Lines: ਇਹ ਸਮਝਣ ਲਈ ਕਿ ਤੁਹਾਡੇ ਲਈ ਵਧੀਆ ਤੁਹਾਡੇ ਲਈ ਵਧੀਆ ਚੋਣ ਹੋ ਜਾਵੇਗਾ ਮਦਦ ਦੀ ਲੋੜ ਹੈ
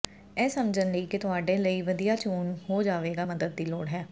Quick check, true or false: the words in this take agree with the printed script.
false